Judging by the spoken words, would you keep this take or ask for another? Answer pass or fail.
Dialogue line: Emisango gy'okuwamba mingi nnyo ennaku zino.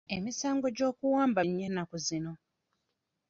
fail